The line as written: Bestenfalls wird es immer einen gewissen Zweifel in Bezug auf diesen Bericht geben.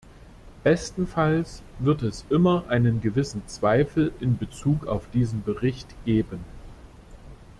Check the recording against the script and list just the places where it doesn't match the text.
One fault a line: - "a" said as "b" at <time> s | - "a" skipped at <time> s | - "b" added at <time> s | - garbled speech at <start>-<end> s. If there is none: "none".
none